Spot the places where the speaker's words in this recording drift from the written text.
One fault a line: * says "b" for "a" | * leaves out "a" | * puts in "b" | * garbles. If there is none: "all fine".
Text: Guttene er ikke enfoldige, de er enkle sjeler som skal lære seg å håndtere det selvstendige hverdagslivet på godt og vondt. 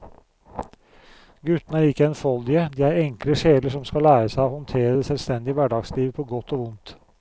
all fine